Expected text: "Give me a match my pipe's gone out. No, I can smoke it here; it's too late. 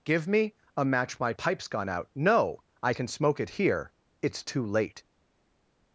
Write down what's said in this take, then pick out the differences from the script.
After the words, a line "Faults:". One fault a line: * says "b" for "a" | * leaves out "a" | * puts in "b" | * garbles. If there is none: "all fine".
"Give me a match my pipe's gone out. No, I can smoke it here; it's too late.
Faults:
all fine